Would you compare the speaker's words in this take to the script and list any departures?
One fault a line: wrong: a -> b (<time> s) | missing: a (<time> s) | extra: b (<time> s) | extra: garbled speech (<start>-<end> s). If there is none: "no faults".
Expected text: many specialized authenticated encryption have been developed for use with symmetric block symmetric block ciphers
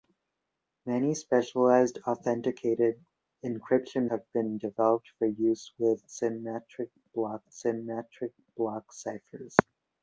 no faults